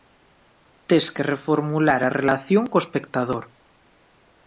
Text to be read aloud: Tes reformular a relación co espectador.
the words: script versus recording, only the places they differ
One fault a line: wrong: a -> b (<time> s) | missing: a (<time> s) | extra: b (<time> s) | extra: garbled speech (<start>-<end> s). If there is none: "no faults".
extra: que (1.1 s)